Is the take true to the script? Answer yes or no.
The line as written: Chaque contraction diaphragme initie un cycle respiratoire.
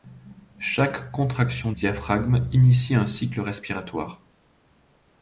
yes